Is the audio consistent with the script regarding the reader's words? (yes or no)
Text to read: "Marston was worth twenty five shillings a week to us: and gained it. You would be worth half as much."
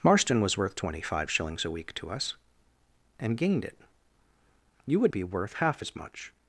yes